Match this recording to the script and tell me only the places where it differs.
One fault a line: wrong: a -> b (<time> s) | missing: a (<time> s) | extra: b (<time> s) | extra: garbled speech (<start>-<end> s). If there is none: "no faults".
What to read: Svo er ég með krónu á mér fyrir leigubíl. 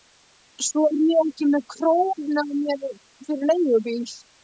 extra: ekki (1.2 s)